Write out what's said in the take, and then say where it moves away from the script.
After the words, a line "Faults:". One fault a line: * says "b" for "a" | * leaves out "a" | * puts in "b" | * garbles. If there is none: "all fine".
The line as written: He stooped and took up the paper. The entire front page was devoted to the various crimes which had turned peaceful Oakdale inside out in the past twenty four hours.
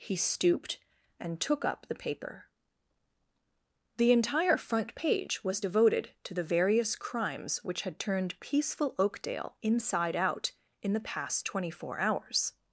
He stooped and took up the paper. The entire front page was devoted to the various crimes which had turned peaceful Oakdale inside out in the past twenty four hours.
Faults:
all fine